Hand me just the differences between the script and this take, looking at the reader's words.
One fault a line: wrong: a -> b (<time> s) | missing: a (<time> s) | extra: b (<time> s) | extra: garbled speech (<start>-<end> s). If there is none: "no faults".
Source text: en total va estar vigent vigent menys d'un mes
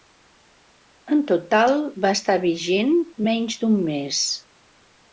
missing: vigent (3.0 s)